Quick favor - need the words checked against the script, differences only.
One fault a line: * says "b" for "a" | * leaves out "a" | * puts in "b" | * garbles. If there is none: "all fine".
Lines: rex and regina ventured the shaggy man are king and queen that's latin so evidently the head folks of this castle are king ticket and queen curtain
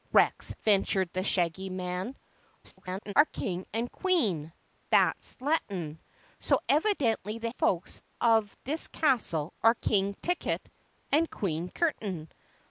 * leaves out "and regina"
* garbles
* leaves out "head"